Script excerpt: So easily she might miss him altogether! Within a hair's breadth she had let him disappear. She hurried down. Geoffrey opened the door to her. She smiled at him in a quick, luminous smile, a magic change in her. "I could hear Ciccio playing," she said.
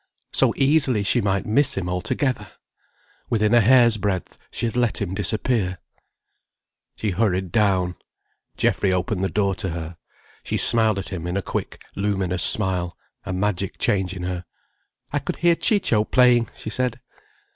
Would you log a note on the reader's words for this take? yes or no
no